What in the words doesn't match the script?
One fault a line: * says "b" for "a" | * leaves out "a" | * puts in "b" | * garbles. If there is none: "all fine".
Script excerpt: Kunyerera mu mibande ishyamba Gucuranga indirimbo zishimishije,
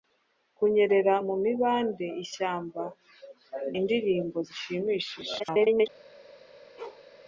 * leaves out "Gucuranga"
* garbles